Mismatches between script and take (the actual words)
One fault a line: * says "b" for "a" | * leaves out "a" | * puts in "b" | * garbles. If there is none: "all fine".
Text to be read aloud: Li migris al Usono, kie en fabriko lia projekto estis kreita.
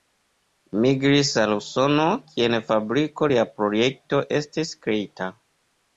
all fine